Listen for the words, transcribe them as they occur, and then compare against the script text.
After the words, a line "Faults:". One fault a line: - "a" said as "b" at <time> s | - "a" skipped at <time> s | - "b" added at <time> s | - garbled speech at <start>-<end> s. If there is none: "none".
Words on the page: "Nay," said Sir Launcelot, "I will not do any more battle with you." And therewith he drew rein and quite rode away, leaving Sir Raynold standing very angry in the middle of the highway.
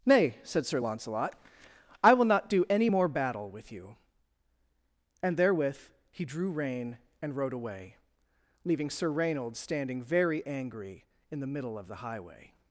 "Nay," said Sir Launcelot, "I will not do any more battle with you." And therewith he drew rein and rode away, leaving Sir Raynold standing very angry in the middle of the highway.
Faults:
- "quite" skipped at 7.3 s